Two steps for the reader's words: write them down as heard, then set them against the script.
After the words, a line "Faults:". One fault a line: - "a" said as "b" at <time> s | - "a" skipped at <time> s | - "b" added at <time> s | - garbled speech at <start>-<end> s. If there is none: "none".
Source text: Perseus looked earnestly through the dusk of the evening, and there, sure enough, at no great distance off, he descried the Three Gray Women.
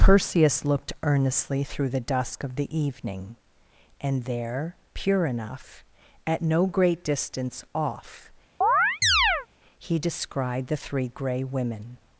Perseus looked earnestly through the dusk of the evening, and there, pure enough, at no great distance off, he descried the Three Gray Women.
Faults:
- "sure" said as "pure" at 4.9 s